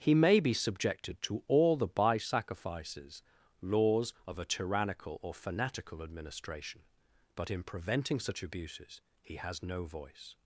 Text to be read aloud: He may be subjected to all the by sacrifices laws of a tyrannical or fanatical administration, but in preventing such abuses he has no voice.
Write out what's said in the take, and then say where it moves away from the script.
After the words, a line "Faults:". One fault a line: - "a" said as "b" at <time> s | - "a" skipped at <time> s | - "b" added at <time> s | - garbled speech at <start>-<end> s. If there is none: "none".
He may be subjected to all the by sacrifices laws of a tyrannical or fanatical administration, but in preventing such abuses he has no voice.
Faults:
none